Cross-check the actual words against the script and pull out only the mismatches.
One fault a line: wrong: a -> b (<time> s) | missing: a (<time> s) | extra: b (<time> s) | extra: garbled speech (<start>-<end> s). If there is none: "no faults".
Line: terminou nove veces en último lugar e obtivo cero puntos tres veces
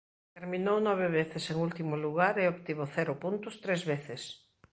no faults